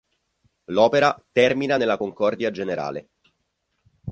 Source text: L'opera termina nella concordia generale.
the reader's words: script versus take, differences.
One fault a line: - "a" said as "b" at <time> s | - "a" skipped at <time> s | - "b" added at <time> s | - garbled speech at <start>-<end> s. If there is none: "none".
none